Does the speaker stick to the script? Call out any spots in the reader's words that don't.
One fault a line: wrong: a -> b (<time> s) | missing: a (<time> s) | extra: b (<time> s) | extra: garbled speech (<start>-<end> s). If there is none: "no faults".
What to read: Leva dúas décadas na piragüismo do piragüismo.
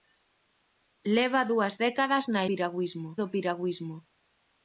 no faults